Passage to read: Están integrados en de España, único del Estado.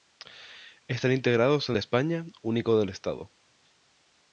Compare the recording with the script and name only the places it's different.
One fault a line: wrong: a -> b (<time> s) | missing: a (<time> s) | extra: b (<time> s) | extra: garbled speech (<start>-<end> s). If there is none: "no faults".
no faults